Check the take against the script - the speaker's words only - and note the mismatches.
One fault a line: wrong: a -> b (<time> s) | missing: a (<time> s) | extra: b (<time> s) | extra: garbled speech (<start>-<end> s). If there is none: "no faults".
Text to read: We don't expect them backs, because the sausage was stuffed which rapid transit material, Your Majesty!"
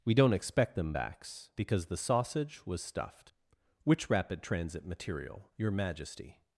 no faults